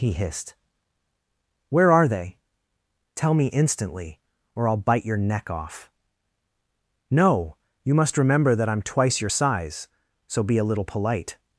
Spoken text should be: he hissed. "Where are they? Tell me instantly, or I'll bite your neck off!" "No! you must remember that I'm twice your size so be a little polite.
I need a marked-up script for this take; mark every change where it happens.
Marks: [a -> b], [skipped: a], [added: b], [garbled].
he hissed. "Where are they? Tell me instantly, or I'll bite your neck off!" "No! you must remember that I'm twice your size so be a little polite.